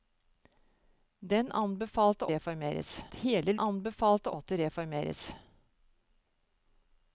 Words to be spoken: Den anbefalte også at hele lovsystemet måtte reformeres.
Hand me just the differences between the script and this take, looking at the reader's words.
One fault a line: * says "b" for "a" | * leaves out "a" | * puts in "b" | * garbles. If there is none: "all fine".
* says "reformeres" for "også"
* says "anbefalte" for "lovsystemet"